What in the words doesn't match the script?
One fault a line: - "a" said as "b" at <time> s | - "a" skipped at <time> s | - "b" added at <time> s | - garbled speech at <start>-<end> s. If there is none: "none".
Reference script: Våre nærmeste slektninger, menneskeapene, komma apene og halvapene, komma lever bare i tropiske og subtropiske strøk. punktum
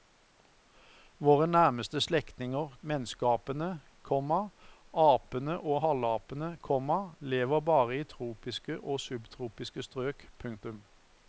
none